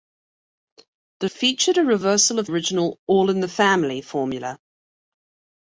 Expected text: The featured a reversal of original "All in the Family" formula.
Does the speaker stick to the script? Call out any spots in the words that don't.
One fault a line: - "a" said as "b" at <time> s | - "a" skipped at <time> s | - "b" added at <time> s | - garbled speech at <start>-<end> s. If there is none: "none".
none